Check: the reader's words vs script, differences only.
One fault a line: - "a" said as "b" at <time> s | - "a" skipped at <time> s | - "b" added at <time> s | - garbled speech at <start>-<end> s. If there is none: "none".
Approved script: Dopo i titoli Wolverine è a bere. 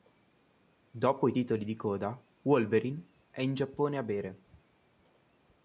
- "di coda" added at 1.6 s
- "in Giappone" added at 3.4 s